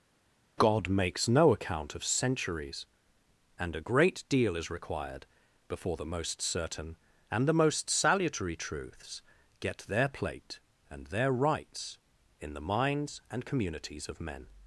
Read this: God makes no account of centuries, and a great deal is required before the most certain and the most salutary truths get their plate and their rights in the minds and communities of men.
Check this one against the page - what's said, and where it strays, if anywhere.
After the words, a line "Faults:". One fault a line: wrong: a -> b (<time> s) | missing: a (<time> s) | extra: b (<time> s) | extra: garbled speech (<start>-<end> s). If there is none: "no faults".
God makes no account of centuries, and a great deal is required before the most certain and the most salutary truths get their plate and their rights in the minds and communities of men.
Faults:
no faults